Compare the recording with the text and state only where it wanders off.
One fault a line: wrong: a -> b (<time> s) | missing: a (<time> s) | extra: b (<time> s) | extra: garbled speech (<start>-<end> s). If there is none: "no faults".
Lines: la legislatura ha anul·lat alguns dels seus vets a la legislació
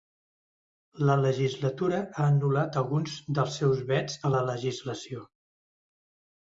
no faults